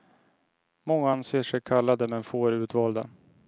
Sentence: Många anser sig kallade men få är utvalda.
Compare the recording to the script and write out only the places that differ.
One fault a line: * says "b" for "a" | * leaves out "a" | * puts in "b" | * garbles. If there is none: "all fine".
all fine